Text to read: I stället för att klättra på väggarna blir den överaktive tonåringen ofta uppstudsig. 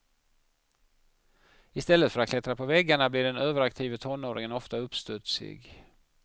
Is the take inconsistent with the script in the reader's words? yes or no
no